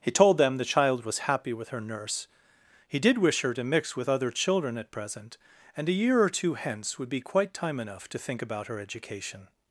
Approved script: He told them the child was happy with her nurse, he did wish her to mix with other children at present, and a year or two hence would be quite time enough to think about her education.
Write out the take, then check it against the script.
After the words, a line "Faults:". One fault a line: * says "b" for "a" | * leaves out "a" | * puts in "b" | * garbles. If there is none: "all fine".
He told them the child was happy with her nurse, he did wish her to mix with other children at present, and a year or two hence would be quite time enough to think about her education.
Faults:
all fine